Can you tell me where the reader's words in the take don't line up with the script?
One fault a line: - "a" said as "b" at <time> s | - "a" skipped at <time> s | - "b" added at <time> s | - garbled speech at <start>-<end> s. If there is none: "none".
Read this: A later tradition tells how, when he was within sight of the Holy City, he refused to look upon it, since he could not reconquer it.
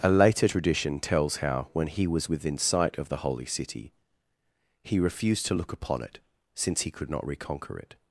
none